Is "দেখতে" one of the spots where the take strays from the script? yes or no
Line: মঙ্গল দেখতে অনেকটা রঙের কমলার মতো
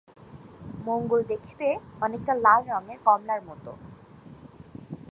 no